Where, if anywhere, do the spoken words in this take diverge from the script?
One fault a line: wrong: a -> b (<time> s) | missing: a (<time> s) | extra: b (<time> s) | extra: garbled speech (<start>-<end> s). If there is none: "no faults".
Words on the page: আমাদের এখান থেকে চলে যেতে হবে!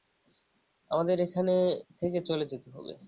no faults